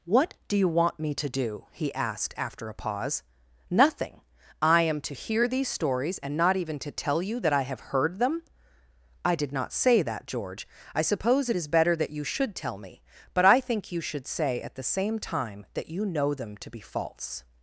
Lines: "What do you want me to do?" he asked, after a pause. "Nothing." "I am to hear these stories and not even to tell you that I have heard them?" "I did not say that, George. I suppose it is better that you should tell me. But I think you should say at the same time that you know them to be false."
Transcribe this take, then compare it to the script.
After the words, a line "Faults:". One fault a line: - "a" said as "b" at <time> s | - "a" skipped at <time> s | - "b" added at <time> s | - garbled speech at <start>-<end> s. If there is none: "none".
"What do you want me to do?" he asked, after a pause. "Nothing." "I am to hear these stories and not even to tell you that I have heard them?" "I did not say that, George. I suppose it is better that you should tell me. But I think you should say at the same time that you know them to be false."
Faults:
none